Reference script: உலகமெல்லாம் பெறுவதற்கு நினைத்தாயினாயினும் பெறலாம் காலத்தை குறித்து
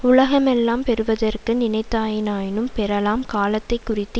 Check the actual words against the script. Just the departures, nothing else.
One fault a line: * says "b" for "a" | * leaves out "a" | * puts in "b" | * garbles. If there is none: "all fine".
all fine